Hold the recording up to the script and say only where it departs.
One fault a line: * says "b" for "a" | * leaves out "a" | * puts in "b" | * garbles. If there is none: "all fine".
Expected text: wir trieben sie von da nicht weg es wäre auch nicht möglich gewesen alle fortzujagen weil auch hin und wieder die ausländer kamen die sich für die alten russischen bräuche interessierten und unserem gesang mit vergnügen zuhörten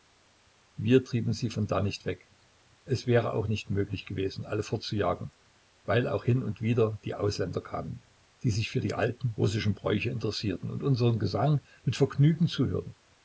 all fine